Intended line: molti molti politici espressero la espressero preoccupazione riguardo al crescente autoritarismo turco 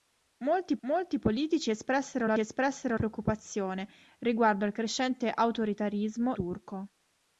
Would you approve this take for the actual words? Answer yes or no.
yes